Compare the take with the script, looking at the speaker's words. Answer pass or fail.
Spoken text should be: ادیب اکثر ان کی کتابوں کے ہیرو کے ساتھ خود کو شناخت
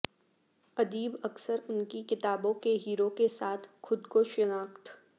pass